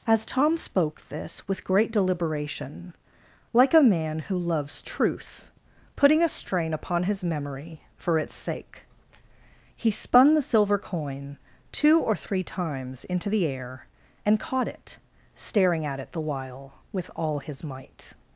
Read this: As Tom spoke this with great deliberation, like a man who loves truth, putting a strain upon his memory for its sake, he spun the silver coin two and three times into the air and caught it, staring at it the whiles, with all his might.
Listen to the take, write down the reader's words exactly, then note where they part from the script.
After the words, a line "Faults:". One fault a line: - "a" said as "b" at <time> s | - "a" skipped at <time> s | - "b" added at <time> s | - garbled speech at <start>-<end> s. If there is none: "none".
As Tom spoke this with great deliberation, like a man who loves truth, putting a strain upon his memory for its sake, he spun the silver coin two or three times into the air and caught it, staring at it the while, with all his might.
Faults:
- "and" said as "or" at 12.0 s
- "whiles" said as "while" at 16.2 s